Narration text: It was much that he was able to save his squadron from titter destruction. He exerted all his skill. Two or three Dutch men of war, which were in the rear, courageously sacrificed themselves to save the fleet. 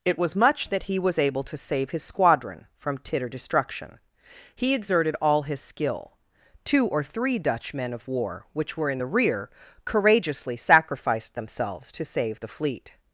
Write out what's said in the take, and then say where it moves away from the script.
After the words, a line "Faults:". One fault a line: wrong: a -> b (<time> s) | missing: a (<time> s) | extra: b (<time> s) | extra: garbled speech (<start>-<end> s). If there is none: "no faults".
It was much that he was able to save his squadron from titter destruction. He exerted all his skill. Two or three Dutch men of war, which were in the rear, courageously sacrificed themselves to save the fleet.
Faults:
no faults